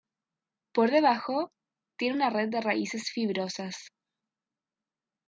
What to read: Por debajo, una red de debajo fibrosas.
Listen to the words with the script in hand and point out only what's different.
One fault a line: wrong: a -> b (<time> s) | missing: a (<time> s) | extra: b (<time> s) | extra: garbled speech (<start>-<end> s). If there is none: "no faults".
extra: tiene (1.9 s)
wrong: debajo -> raíces (2.6 s)